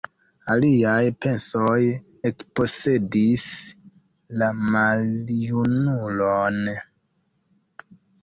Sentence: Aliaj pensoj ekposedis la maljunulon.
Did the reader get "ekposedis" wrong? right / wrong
right